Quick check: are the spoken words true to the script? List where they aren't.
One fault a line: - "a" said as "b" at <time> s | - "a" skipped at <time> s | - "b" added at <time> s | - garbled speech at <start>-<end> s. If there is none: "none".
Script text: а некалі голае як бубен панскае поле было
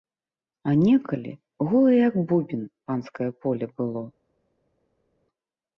none